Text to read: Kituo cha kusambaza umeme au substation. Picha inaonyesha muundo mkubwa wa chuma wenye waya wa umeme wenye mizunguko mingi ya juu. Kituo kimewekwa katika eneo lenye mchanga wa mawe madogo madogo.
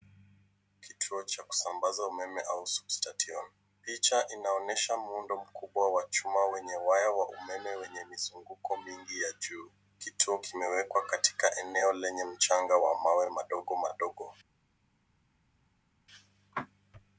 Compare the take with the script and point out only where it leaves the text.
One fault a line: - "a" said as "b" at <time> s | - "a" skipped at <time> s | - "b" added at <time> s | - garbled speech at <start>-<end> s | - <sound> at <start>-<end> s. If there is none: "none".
none